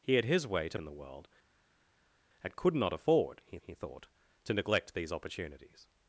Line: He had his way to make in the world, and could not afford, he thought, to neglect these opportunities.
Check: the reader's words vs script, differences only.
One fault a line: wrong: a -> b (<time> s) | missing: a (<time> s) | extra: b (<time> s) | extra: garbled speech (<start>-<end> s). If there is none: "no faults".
missing: make (0.8 s)
extra: he (3.6 s)